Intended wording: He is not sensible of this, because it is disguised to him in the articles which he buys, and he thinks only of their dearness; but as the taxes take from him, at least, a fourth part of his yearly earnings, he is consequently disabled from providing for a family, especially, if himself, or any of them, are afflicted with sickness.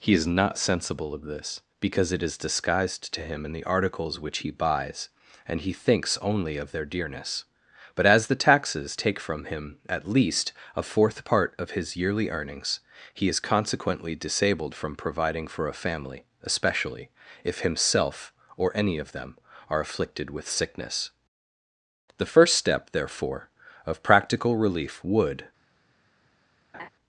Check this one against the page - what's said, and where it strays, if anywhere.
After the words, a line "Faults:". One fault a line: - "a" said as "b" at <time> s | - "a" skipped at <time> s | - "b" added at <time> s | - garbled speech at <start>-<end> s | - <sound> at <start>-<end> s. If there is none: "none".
He is not sensible of this, because it is disguised to him in the articles which he buys, and he thinks only of their dearness; but as the taxes take from him, at least, a fourth part of his yearly earnings, he is consequently disabled from providing for a family, especially, if himself, or any of them, are afflicted with sickness. The first step, therefore, of practical relief, would
Faults:
- "The first step therefore of practical relief would" added at 22.2 s
- laugh at 26.7-26.9 s